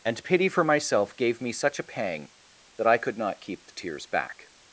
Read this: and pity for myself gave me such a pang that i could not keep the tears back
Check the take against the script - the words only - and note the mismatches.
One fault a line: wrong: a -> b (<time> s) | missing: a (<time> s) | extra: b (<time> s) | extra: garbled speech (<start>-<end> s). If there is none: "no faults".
no faults